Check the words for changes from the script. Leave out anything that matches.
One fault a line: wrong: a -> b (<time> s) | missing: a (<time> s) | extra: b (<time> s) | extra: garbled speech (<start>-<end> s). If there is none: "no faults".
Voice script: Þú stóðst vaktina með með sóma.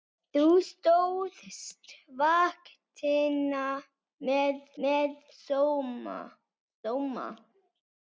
no faults